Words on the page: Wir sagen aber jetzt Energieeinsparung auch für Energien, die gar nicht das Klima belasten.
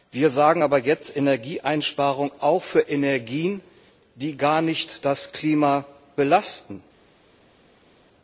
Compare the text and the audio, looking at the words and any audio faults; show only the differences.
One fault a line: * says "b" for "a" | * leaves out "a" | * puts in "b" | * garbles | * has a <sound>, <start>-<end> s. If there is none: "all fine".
all fine